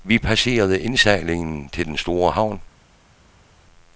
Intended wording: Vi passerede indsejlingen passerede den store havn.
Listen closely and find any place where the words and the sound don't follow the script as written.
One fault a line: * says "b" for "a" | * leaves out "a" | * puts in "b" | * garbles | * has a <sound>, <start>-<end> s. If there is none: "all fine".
* says "til" for "passerede"